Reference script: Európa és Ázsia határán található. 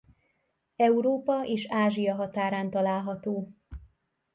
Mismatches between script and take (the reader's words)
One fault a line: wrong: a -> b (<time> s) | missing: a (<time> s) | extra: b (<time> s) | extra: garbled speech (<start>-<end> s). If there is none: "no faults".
no faults